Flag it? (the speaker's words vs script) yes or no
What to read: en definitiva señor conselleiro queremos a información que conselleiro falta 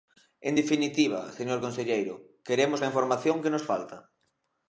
yes